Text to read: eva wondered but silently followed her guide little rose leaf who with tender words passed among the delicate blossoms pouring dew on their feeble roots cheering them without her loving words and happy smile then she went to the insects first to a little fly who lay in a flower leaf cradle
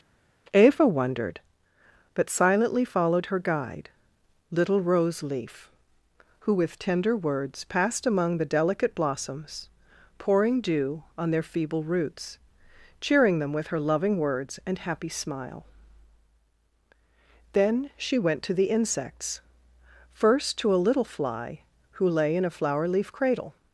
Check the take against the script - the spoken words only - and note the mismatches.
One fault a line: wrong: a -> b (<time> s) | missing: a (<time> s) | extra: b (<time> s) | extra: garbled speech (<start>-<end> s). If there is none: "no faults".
wrong: without -> with (13.5 s)